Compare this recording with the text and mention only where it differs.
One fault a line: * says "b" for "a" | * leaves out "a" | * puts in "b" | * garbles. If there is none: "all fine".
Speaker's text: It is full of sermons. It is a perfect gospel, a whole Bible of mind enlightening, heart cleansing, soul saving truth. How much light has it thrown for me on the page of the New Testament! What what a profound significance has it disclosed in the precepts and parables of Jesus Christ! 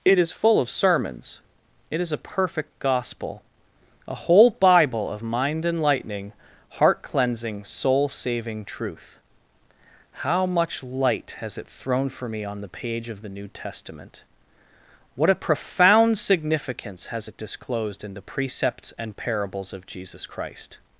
* leaves out "what"